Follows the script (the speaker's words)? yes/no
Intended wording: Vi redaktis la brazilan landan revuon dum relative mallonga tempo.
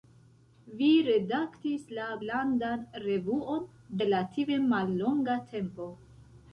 no